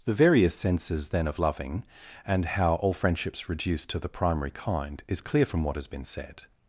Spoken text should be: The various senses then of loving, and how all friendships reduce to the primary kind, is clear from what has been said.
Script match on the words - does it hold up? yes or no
yes